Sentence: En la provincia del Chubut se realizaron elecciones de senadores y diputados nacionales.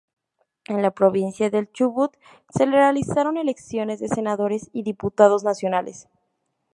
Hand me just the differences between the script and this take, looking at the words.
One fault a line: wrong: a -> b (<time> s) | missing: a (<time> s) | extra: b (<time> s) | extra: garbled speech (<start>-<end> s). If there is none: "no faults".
no faults